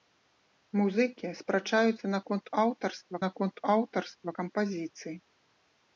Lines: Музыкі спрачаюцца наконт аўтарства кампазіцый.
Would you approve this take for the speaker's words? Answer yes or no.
no